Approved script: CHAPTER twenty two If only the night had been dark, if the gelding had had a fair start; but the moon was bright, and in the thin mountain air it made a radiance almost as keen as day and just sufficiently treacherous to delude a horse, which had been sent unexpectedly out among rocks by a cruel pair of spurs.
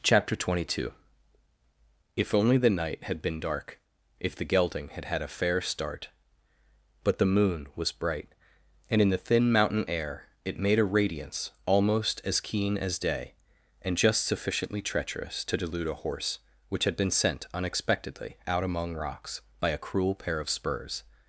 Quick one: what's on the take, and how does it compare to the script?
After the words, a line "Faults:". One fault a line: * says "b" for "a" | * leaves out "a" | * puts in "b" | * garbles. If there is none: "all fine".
CHAPTER twenty two If only the night had been dark, if the gelding had had a fair start; but the moon was bright, and in the thin mountain air it made a radiance almost as keen as day and just sufficiently treacherous to delude a horse, which had been sent unexpectedly out among rocks by a cruel pair of spurs.
Faults:
all fine